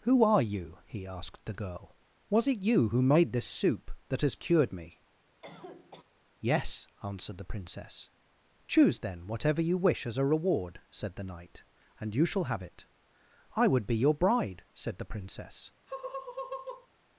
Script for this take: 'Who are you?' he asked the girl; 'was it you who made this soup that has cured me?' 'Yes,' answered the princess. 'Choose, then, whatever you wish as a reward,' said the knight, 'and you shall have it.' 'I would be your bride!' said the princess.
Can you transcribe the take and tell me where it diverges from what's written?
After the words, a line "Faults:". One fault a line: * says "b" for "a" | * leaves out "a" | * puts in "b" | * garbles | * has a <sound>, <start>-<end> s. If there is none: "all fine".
'Who are you?' he asked the girl; 'was it you who made this soup that has cured me?' 'Yes,' answered the princess. 'Choose, then, whatever you wish as a reward,' said the knight, 'and you shall have it.' 'I would be your bride!' said the princess.
Faults:
* has a cough, 5.4-6.0 s
* has a laugh, 15.9-16.9 s